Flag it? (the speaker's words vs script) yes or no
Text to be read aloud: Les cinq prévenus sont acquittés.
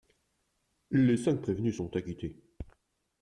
no